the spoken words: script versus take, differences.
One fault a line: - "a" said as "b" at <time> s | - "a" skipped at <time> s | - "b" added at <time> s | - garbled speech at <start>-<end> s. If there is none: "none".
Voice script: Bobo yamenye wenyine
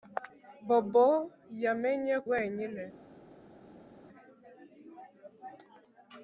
none